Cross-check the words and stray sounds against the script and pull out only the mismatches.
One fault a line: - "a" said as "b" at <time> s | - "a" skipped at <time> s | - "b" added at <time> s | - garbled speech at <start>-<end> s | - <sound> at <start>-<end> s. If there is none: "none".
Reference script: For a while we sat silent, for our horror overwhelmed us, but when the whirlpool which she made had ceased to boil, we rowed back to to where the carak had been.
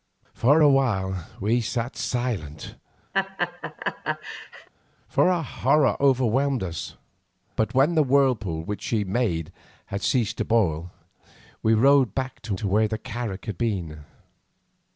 - laugh at 3.1-4.7 s